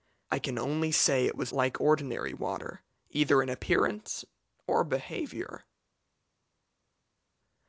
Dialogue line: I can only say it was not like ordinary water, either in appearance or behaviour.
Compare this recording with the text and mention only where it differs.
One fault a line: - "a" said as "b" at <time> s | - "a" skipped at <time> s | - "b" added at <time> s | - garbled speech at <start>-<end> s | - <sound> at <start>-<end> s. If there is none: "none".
- "not" skipped at 1.5 s